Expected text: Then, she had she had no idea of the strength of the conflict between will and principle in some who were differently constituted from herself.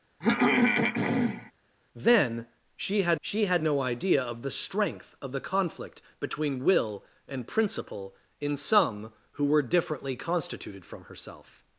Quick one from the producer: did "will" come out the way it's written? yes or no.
yes